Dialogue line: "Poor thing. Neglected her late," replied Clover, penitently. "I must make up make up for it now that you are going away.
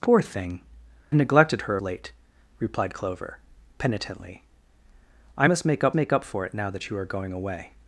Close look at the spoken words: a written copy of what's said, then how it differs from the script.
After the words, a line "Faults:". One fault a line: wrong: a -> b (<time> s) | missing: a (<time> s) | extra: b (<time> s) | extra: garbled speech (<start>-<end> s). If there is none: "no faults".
"Poor thing. Neglected her late," replied Clover, penitently. "I must make up make up for it now that you are going away.
Faults:
no faults